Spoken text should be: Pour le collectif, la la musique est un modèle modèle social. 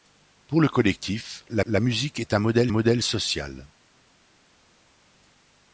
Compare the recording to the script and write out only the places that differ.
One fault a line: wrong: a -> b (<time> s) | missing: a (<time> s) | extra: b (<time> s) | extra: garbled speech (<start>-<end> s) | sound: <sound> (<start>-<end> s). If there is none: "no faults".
no faults